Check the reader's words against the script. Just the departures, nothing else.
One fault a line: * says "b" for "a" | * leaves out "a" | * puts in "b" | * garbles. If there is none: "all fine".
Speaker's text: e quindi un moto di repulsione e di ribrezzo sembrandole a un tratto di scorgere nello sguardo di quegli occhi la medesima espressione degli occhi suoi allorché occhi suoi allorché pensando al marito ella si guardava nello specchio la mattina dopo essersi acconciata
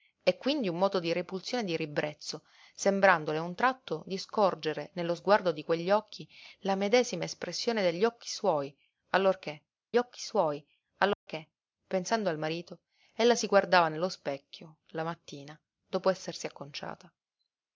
all fine